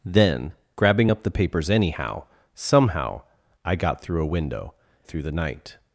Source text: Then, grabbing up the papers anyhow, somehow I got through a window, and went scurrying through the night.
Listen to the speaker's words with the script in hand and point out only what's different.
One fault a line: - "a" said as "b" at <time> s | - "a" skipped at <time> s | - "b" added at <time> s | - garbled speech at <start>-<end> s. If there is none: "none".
- "and went scurrying" skipped at 4.7 s